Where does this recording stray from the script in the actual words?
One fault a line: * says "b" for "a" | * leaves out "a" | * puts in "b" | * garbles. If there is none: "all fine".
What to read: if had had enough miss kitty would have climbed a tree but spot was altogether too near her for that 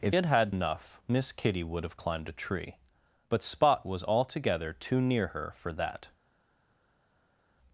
all fine